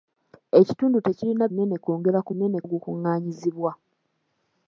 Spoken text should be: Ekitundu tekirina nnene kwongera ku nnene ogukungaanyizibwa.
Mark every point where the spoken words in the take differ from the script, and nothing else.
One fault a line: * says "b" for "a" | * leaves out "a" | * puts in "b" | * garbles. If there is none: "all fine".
all fine